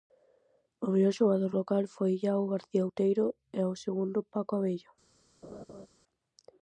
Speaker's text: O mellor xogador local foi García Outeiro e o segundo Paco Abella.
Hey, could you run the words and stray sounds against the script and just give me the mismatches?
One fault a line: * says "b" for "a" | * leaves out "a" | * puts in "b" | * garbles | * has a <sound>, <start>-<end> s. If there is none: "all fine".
* puts in "Iago"
* has a laugh, 5.4-5.9 s